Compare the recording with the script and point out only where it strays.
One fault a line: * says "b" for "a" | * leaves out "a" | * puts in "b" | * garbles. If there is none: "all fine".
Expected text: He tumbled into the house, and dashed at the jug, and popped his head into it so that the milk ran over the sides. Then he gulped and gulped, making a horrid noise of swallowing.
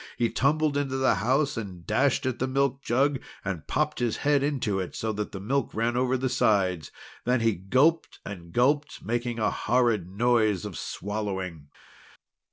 * puts in "milk"